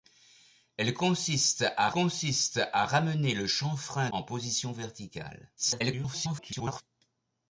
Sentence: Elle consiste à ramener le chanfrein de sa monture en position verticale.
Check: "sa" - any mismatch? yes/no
yes